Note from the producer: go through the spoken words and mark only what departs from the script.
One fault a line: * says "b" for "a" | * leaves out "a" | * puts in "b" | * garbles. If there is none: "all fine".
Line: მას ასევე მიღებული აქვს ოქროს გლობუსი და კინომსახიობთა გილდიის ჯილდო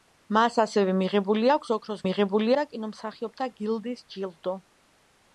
* says "მიღებული" for "გლობუსი"